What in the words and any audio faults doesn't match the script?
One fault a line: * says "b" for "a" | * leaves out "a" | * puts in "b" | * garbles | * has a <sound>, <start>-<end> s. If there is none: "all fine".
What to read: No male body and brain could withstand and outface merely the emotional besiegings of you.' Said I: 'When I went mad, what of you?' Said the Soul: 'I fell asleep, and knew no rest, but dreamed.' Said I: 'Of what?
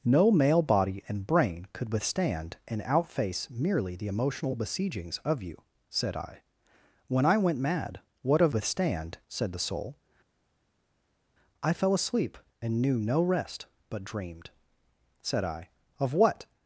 * says "withstand" for "you"